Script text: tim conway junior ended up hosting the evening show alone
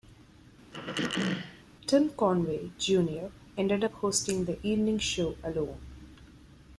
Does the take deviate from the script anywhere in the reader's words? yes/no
no